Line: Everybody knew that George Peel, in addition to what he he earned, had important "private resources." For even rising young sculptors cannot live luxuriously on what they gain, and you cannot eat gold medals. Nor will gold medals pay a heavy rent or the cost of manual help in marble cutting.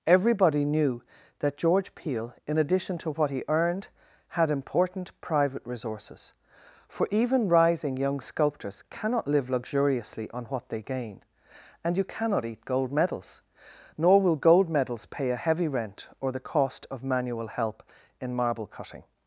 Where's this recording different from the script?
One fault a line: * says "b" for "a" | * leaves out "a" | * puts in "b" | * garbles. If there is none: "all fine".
* leaves out "he"